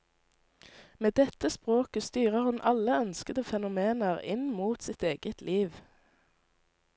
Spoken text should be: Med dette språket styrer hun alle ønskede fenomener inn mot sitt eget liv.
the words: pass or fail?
pass